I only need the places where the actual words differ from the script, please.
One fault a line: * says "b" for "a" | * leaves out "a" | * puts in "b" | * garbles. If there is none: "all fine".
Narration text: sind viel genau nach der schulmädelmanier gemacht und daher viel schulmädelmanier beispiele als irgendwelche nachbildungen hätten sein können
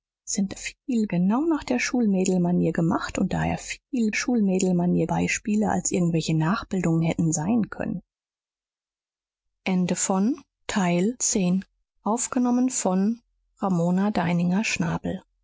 all fine